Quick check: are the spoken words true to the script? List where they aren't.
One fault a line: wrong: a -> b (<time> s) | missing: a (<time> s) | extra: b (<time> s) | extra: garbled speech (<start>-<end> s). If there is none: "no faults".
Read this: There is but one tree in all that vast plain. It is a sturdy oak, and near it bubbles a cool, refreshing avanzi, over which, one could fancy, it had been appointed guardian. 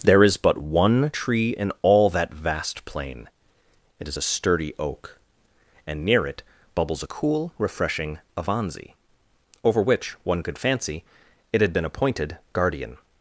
no faults